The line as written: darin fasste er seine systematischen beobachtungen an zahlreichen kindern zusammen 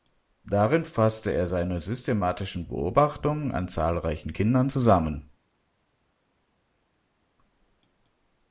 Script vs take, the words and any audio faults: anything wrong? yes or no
no